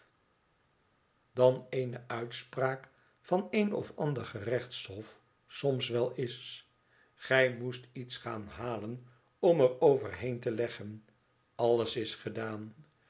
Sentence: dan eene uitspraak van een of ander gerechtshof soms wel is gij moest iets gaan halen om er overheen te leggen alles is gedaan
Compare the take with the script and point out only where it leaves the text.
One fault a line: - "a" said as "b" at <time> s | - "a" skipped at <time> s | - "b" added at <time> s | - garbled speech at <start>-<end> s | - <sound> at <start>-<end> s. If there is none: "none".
none